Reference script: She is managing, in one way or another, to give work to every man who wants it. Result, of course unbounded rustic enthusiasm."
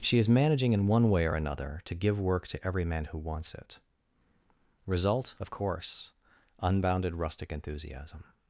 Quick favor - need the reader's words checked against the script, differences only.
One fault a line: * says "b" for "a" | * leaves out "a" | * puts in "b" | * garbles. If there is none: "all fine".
all fine